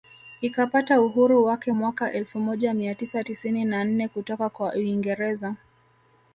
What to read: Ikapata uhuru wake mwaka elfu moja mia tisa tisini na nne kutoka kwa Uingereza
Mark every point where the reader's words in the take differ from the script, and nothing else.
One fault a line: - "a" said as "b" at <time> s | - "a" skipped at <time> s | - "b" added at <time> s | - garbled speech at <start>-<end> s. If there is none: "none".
none